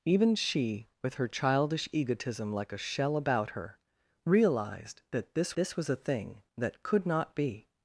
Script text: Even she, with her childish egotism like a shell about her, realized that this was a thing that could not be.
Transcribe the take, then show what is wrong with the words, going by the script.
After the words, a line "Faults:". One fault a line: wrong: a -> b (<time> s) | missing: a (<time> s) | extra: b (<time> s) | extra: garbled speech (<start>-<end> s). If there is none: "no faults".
Even she, with her childish egotism like a shell about her, realized that this this was a thing that could not be.
Faults:
extra: this (5.6 s)